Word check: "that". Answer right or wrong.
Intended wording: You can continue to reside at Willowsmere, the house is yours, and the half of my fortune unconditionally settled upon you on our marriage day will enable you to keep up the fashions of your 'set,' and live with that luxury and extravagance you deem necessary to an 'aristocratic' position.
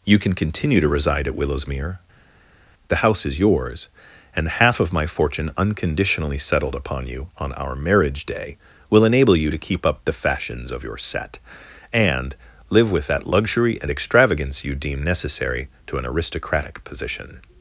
right